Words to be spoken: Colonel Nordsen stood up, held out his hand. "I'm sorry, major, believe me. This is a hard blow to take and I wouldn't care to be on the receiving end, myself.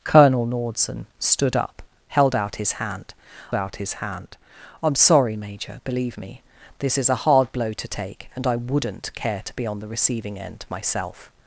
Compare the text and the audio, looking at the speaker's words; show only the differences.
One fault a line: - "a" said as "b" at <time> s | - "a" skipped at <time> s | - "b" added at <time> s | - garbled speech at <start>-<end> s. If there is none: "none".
- "out his hand" added at 3.5 s